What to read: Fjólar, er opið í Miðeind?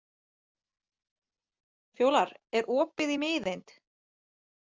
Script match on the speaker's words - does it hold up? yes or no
yes